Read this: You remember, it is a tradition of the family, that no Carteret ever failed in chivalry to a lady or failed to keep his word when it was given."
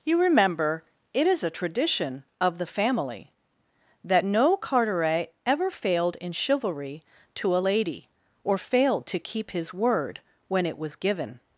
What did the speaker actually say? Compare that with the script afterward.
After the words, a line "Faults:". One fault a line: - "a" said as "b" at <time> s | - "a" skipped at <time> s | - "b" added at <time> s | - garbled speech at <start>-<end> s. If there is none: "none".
You remember, it is a tradition of the family, that no Carteret ever failed in chivalry to a lady or failed to keep his word when it was given."
Faults:
none